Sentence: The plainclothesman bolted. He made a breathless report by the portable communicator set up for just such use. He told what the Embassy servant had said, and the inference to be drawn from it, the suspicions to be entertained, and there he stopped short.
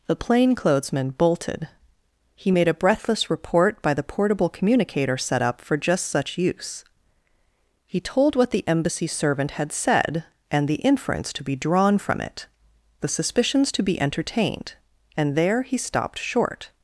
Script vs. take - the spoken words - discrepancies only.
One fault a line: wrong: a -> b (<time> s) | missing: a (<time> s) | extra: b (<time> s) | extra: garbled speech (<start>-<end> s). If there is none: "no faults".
no faults